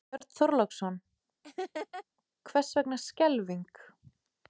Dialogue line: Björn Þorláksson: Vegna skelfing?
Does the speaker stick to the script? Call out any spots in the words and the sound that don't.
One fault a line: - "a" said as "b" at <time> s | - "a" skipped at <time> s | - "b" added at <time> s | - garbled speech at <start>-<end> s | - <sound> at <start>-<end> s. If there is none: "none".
- dropout at 0.2-0.2 s
- laugh at 1.4-2.0 s
- "Hvers" added at 2.5 s